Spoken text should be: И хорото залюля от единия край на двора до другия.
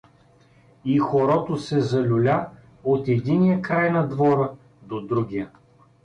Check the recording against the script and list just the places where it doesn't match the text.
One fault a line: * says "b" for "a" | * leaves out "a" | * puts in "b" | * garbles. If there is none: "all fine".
* puts in "се"